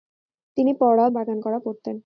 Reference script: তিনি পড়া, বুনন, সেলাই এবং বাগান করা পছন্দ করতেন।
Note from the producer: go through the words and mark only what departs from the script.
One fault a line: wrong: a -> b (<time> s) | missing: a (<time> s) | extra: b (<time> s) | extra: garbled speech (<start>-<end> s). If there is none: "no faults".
missing: বুনন সেলাই এবং (1.1 s)
missing: পছন্দ (1.6 s)